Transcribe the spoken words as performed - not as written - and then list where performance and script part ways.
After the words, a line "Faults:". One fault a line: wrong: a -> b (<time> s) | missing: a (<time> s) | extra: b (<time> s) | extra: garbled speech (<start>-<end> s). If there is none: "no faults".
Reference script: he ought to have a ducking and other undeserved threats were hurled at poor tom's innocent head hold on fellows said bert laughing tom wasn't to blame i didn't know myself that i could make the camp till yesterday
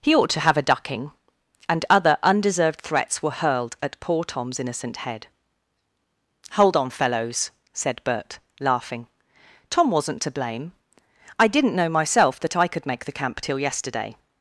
he ought to have a ducking and other undeserved threats were hurled at poor tom's innocent head hold on fellows said bert laughing tom wasn't to blame i didn't know myself that i could make the camp till yesterday
Faults:
no faults